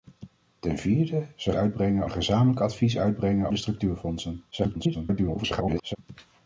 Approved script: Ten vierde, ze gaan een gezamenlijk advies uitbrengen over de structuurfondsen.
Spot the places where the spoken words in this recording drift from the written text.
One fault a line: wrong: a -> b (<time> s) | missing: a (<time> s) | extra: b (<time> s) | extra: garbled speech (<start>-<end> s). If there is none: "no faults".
wrong: gaan -> uitbrengen (1.6 s)
missing: over (3.5 s)
extra: garbled speech (4.5-6.0 s)